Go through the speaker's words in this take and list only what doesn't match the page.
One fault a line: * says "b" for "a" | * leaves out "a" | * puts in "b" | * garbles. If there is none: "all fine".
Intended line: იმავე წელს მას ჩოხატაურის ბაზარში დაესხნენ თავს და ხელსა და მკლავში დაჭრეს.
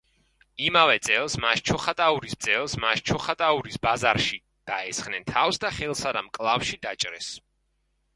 * puts in "წელს მას ჩოხატაურის"